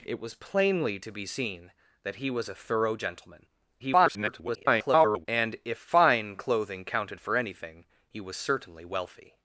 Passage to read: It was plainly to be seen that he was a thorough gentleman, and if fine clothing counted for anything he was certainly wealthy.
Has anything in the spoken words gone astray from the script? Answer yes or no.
yes